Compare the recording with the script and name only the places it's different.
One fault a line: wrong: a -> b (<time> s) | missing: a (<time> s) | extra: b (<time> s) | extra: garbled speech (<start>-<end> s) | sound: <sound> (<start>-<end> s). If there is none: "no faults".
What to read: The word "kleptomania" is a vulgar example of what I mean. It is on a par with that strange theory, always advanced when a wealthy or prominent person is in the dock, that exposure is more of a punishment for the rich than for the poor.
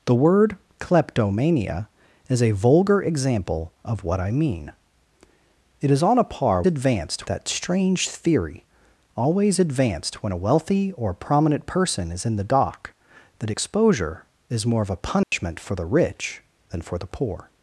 wrong: with -> advanced (6.7 s)
sound: dropout (15.2-15.3 s)